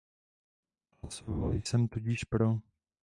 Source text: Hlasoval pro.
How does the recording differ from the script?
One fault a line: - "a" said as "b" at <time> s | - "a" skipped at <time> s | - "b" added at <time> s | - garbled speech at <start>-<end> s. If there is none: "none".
- "jsem tudíž" added at 1.5 s